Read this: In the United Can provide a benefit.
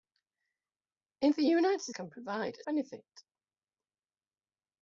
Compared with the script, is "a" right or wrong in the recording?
right